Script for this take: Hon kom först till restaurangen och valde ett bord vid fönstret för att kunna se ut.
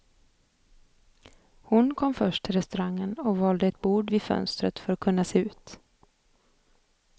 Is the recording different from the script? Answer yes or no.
no